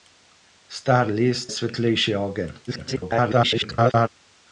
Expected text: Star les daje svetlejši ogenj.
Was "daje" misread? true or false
true